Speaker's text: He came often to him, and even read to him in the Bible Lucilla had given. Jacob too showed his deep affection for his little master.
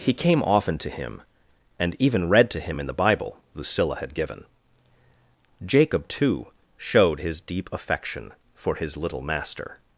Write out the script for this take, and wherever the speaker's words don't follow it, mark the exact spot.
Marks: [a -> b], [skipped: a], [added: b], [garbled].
He came often to him, and even read to him in the Bible Lucilla had given. Jacob too showed his deep affection for his little master.